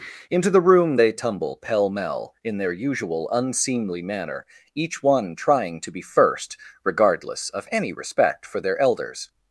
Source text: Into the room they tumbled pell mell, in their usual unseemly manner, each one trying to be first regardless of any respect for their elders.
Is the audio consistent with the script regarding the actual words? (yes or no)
no